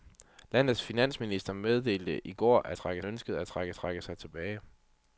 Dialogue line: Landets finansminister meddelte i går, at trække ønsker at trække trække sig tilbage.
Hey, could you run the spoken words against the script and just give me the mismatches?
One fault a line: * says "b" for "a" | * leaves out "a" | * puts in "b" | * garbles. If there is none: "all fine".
all fine